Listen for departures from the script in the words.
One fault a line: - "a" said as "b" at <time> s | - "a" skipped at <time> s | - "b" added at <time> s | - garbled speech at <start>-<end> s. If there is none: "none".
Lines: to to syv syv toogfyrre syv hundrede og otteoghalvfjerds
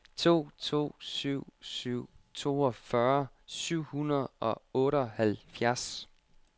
none